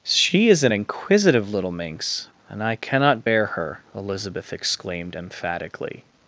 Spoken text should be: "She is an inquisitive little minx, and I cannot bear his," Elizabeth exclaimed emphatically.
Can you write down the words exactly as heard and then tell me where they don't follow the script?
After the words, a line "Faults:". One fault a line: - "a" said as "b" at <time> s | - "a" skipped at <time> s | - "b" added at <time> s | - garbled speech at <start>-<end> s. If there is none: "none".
"She is an inquisitive little minx, and I cannot bear her," Elizabeth exclaimed emphatically.
Faults:
- "his" said as "her" at 3.5 s